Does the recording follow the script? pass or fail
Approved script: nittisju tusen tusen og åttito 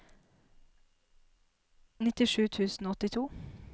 fail